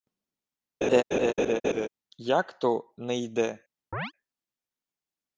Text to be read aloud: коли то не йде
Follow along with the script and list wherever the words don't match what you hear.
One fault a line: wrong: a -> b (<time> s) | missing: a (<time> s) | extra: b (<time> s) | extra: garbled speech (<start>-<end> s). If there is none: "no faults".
wrong: коли -> як (2.2 s)